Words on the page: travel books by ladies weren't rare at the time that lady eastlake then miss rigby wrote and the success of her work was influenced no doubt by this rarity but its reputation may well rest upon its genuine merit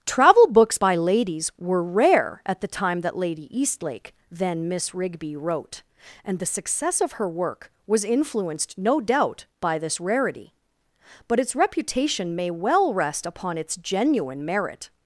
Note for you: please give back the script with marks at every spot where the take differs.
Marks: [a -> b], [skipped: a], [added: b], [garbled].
travel books by ladies [weren't -> were] rare at the time that lady eastlake then miss rigby wrote and the success of her work was influenced no doubt by this rarity but its reputation may well rest upon its genuine merit